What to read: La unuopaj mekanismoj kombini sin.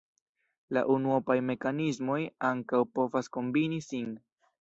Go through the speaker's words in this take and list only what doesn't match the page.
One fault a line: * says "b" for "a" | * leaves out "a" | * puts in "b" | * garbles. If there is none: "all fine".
* puts in "ankaŭ povas"